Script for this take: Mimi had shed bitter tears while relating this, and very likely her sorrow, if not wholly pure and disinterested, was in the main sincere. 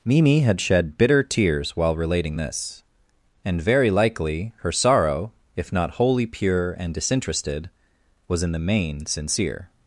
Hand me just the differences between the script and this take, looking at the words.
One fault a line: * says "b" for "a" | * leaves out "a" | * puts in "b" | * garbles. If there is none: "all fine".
all fine